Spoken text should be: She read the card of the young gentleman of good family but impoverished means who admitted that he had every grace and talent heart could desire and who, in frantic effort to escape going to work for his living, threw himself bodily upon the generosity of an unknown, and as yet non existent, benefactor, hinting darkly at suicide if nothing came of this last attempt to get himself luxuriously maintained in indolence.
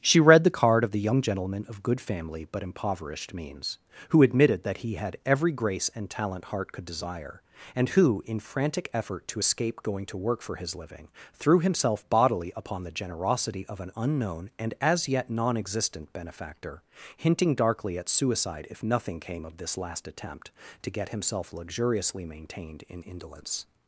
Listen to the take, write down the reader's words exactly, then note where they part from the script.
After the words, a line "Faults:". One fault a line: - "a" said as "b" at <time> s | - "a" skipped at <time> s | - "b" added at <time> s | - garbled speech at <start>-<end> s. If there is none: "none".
She read the card of the young gentleman of good family but impoverished means who admitted that he had every grace and talent heart could desire and who, in frantic effort to escape going to work for his living, threw himself bodily upon the generosity of an unknown, and as yet non existent, benefactor, hinting darkly at suicide if nothing came of this last attempt to get himself luxuriously maintained in indolence.
Faults:
none